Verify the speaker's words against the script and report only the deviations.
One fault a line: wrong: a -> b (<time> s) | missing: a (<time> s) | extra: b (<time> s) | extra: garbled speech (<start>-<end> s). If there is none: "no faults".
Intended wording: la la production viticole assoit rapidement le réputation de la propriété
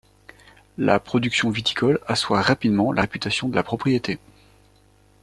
missing: la (1.0 s)
wrong: le -> la (2.9 s)